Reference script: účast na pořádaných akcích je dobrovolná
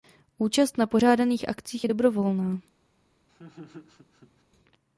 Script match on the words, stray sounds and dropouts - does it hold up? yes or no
no